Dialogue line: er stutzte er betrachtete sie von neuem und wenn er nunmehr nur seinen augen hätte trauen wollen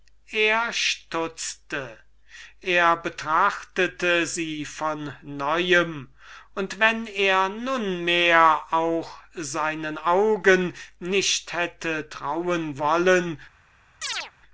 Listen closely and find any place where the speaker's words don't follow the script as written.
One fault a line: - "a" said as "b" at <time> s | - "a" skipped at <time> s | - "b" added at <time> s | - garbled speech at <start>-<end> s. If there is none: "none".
- "nur" said as "auch" at 8.7 s
- "nicht" added at 11.0 s